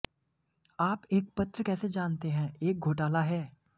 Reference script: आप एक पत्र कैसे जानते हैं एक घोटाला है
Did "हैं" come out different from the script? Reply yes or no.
no